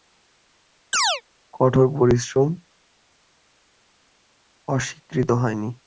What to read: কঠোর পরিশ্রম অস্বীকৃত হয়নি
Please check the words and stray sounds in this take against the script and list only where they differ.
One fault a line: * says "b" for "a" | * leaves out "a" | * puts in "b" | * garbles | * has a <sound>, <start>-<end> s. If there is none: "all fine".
* has a chirp, 0.9-1.2 s